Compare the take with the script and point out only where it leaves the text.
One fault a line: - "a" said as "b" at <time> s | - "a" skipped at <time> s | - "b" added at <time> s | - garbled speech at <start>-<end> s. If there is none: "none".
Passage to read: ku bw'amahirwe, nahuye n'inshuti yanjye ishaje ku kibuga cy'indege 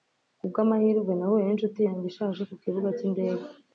none